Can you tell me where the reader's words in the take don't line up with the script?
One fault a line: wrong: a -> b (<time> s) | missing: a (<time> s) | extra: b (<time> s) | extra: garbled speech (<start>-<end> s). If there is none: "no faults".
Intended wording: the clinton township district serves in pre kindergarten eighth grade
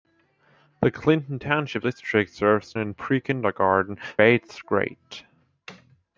no faults